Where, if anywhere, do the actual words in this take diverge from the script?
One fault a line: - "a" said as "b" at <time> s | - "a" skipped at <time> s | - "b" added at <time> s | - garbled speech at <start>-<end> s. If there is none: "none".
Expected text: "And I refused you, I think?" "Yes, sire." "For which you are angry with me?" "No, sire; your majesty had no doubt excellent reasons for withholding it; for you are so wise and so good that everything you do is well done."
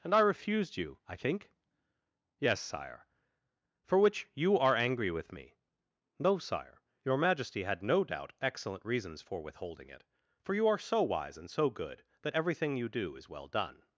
none